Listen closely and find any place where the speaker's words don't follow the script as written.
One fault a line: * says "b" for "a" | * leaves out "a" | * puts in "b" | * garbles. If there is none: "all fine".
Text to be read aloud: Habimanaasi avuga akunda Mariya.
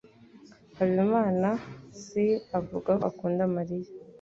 all fine